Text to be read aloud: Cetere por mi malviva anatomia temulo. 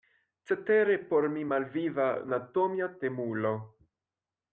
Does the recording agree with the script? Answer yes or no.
yes